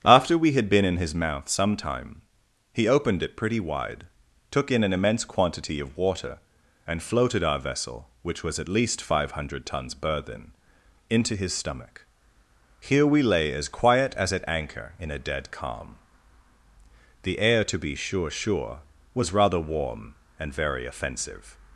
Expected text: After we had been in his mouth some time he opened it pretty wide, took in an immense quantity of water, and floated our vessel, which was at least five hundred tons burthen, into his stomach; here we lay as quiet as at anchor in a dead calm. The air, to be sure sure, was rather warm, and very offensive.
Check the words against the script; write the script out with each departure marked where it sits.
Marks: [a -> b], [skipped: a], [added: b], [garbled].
After we had been in his mouth some time he opened it pretty wide, took in an immense quantity of water, and floated our vessel, which was at least five hundred tons burthen, into his stomach; here we lay as quiet as at anchor in a dead calm. The air, to be sure sure, was rather warm, and very offensive.